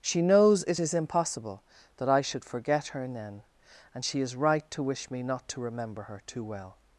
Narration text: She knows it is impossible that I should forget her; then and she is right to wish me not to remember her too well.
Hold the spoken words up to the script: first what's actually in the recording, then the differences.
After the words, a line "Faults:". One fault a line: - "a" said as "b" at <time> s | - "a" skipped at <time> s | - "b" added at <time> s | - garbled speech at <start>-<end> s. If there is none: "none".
She knows it is impossible that I should forget her; then and she is right to wish me not to remember her too well.
Faults:
none